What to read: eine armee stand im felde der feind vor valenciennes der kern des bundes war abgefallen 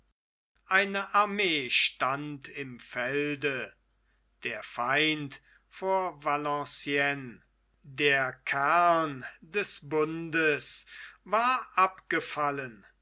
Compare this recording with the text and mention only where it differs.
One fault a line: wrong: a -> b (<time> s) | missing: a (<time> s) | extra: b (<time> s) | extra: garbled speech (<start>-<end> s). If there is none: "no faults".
no faults